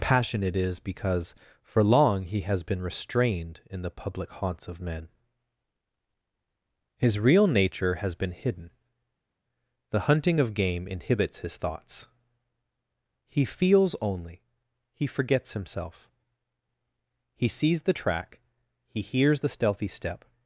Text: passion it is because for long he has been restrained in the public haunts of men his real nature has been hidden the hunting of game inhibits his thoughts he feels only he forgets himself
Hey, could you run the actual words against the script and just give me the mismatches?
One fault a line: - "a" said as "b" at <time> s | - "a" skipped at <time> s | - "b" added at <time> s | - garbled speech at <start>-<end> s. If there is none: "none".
- "he sees the track he hears the stealthy step" added at 17.3 s